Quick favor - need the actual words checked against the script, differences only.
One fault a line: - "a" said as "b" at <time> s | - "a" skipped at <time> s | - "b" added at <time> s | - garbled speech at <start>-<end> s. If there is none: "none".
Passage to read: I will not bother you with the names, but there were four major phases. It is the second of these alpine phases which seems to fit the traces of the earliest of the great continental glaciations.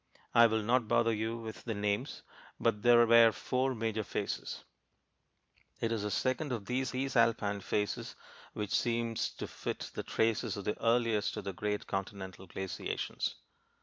- "these" added at 6.9 s